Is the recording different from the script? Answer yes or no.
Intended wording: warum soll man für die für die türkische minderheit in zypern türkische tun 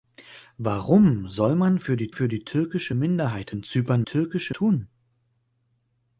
no